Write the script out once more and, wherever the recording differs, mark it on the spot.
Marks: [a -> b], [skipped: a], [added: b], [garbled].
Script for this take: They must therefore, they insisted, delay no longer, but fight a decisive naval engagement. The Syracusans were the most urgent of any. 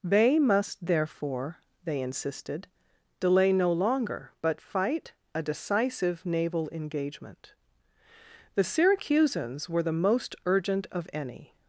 They must therefore, they insisted, delay no longer, but fight a decisive naval engagement. The Syracusans were the most urgent of any.